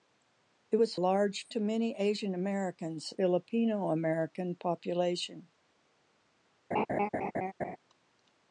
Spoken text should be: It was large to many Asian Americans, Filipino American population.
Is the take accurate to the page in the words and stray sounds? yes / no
no